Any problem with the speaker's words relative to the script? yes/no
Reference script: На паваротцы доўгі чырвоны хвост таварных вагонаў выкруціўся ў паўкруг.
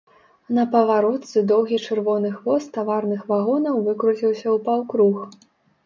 no